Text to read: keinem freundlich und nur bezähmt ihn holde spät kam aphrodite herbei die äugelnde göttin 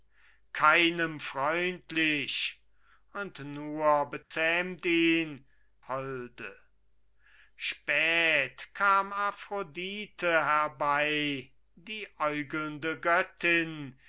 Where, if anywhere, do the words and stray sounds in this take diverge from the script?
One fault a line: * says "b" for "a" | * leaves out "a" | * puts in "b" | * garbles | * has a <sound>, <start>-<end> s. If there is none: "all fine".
* has a dropout, 4.2-4.3 s